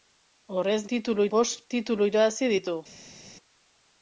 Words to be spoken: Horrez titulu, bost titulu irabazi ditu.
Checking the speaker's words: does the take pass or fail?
pass